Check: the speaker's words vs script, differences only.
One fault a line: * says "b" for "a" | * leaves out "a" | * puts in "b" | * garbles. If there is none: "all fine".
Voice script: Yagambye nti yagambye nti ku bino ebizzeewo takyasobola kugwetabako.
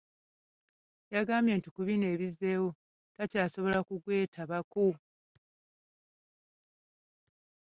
* leaves out "yagambye nti"